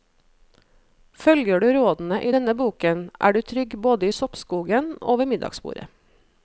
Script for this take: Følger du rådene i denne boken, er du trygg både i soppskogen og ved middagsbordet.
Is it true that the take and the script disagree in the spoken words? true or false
false